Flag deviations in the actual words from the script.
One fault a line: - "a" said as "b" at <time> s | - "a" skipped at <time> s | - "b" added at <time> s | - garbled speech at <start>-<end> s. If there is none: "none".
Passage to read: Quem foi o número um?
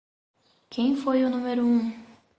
none